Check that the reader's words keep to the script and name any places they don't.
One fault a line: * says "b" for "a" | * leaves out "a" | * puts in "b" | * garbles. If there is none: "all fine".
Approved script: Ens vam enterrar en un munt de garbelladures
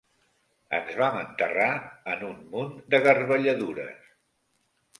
all fine